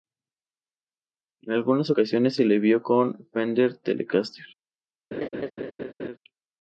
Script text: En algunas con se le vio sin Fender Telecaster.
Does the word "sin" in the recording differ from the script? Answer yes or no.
yes